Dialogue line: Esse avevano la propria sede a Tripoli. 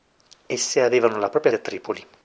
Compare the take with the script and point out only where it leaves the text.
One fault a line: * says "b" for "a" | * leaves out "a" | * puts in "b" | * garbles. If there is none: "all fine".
* leaves out "sede"